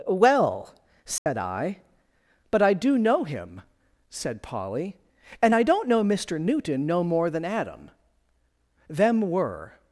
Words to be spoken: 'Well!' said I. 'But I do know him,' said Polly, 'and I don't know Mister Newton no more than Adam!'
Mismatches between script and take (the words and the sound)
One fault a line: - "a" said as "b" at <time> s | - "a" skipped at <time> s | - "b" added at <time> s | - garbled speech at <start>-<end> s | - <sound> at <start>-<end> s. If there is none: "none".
- dropout at 1.2-1.3 s
- "Them were" added at 8.9 s